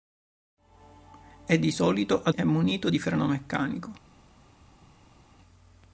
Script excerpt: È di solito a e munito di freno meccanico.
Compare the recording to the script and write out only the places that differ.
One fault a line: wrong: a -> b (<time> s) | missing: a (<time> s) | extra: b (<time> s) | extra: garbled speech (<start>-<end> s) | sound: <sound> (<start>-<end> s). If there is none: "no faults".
no faults